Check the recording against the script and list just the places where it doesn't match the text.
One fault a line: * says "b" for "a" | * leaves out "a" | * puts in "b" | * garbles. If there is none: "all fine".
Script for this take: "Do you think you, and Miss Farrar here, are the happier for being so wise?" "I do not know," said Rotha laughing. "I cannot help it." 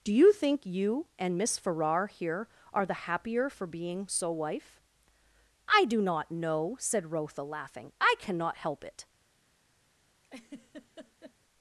* says "wife" for "wise"